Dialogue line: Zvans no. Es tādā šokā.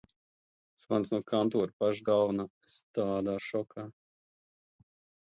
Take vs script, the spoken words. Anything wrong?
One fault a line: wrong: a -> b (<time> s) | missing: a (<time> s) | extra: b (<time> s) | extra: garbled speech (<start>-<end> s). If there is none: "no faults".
extra: kantora paša galvenā (1.3 s)